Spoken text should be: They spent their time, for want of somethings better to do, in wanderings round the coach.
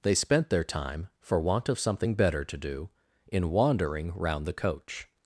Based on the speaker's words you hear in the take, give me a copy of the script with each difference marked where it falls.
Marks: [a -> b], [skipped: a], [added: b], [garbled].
They spent their time, for want of [somethings -> something] better to do, in [wanderings -> wandering] round the coach.